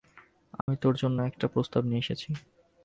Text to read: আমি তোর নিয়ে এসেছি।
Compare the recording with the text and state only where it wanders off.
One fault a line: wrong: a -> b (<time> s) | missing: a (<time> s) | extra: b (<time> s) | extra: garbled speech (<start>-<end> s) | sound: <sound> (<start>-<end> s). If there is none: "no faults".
sound: dropout (0.6-0.7 s)
extra: জন্য একটা প্রস্তাব (0.9 s)